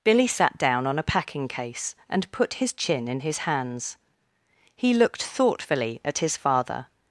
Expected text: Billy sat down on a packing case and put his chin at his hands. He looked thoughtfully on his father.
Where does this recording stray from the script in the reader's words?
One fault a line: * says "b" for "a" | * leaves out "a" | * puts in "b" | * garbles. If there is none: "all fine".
* says "in" for "at"
* says "at" for "on"